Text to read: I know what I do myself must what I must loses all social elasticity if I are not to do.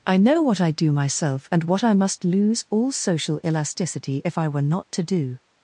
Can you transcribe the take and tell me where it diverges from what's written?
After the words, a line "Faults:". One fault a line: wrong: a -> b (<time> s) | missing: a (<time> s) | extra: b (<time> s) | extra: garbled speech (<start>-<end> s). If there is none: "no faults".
I know what I do myself and what I must lose all social elasticity if I were not to do.
Faults:
wrong: must -> and (1.5 s)
wrong: loses -> lose (2.2 s)
wrong: are -> were (4.5 s)